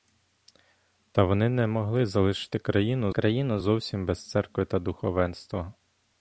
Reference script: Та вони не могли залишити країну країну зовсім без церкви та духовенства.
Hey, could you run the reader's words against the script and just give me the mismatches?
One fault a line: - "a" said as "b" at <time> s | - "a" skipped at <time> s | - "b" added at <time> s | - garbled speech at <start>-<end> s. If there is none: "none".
none